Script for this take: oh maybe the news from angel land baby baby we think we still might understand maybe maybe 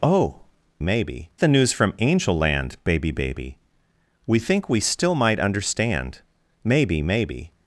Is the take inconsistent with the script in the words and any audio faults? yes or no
no